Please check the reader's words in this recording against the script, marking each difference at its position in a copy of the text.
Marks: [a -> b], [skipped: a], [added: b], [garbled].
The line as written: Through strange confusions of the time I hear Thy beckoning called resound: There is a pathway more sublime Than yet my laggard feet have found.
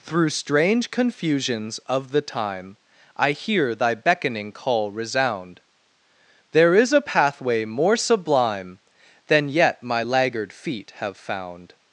Through strange confusions of the time I hear Thy beckoning [called -> call] resound: There is a pathway more sublime Than yet my laggard feet have found.